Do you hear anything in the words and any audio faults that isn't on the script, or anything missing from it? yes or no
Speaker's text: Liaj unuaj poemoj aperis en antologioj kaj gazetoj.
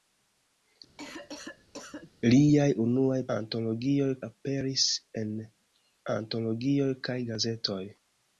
yes